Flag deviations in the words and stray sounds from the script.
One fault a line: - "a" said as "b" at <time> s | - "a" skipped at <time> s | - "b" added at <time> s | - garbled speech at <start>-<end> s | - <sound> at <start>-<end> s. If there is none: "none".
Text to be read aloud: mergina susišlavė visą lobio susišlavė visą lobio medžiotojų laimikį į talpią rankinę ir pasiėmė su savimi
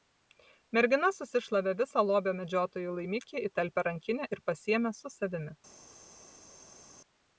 - "susišlavė visą lobio" skipped at 2.3 s